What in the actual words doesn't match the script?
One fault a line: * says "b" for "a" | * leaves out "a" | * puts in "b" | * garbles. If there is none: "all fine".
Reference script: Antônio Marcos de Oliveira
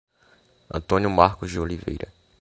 all fine